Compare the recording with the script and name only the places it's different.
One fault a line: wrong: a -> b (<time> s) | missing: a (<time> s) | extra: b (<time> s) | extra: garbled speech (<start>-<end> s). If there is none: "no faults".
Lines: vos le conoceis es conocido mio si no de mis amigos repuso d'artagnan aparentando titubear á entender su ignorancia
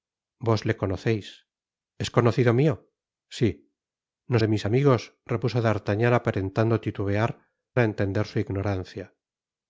no faults